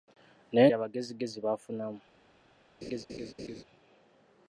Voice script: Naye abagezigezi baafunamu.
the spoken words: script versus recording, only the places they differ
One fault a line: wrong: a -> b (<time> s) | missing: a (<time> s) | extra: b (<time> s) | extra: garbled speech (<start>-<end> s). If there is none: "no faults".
no faults